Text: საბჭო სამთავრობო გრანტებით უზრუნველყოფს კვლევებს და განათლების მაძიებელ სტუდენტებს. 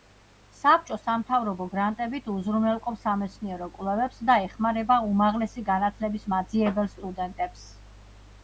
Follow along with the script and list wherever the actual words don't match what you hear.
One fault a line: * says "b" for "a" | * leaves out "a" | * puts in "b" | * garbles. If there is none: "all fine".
* puts in "სამეცნიერო"
* puts in "ეხმარება უმაღლესი"